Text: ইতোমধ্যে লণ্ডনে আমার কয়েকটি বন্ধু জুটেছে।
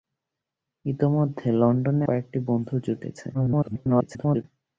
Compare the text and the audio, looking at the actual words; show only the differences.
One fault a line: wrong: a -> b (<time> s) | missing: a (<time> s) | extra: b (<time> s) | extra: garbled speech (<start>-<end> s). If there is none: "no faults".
missing: আমার (2.0 s)
extra: garbled speech (3.3-4.4 s)